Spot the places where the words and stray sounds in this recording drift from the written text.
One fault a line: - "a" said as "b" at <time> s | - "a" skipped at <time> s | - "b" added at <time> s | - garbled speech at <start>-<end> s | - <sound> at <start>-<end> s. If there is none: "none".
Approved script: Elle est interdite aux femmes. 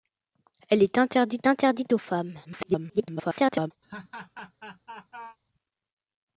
- "interdite" added at 1.5 s
- garbled speech at 2.4-3.7 s
- laugh at 3.8-5.4 s